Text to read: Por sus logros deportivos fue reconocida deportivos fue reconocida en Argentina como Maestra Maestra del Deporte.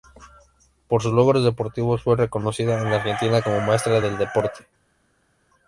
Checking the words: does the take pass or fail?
fail